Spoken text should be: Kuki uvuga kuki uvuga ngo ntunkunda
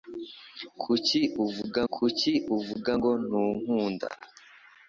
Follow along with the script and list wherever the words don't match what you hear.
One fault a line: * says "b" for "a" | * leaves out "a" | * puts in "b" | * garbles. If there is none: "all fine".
all fine